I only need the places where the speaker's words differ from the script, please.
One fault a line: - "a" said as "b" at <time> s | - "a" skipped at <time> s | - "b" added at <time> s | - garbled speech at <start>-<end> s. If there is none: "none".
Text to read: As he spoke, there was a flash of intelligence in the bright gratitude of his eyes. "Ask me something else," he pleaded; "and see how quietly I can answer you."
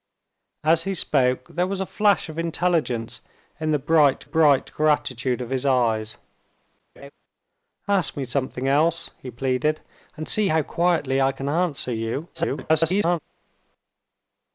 - "bright" added at 4.2 s
- garbled speech at 12.3-13.2 s